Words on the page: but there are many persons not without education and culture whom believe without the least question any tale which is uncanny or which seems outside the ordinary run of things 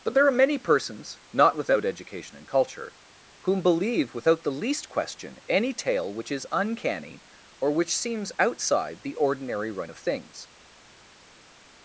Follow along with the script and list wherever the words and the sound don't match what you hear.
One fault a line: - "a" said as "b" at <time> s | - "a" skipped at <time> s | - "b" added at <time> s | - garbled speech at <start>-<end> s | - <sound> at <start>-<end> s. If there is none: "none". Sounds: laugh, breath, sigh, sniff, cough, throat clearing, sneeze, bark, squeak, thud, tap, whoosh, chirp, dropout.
none